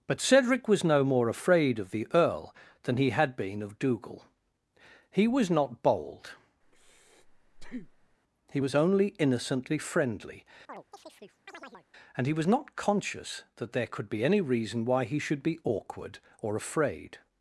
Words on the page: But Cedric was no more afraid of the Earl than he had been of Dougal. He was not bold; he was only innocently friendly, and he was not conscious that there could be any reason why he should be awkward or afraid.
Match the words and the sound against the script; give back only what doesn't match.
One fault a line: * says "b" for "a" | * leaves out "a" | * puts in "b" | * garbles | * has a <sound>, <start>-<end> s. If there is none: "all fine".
* has a breath, 6.6-8.2 s
* has a chirp, 10.7-11.9 s